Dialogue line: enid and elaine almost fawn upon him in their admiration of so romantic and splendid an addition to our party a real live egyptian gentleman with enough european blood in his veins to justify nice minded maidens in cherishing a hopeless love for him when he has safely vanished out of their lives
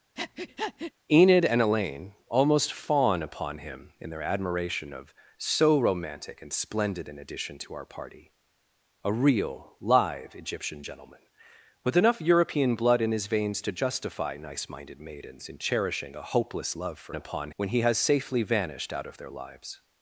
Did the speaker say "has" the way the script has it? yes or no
yes